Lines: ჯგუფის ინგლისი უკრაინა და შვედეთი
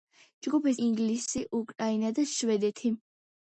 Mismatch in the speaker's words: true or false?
false